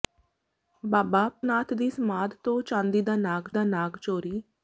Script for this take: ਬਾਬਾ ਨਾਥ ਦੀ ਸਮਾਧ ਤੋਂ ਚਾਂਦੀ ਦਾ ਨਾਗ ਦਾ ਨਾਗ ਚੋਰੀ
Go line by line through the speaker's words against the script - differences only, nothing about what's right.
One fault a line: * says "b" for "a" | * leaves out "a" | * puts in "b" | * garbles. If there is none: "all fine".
all fine